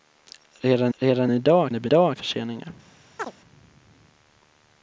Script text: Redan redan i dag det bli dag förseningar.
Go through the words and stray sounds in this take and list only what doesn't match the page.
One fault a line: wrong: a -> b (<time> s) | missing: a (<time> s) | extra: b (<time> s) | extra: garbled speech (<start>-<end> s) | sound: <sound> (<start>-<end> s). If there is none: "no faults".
sound: chirp (3.2-3.3 s)